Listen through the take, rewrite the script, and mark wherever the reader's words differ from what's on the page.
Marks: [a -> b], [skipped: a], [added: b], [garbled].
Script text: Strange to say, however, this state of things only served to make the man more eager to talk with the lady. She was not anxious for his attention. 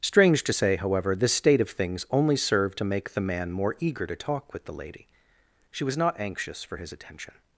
Strange to say, however, this state of things only served to make the man more eager to talk with the lady. She was not anxious for his attention.